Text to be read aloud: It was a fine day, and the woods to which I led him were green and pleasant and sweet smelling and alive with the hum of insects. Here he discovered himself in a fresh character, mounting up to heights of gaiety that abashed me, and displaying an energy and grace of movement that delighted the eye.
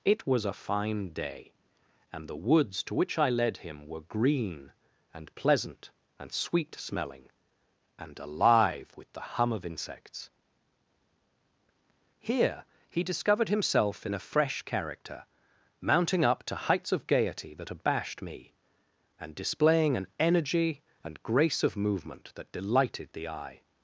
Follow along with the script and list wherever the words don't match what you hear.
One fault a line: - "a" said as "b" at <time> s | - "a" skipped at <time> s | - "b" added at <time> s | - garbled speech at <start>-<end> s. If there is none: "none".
none